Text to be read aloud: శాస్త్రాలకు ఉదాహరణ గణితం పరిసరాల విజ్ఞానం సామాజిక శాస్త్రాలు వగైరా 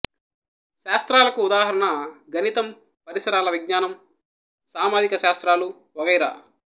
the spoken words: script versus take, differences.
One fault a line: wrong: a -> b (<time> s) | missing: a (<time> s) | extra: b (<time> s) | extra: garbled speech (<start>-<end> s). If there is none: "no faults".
no faults